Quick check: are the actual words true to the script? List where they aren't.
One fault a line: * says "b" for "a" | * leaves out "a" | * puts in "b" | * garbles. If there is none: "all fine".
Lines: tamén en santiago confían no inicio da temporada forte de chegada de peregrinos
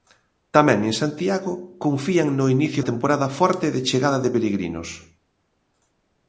* leaves out "da"